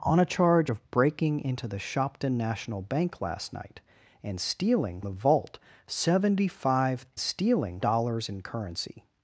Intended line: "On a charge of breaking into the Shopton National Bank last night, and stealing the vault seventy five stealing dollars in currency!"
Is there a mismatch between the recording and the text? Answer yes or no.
no